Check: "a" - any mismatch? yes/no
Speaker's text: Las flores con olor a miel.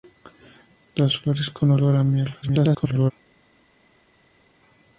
no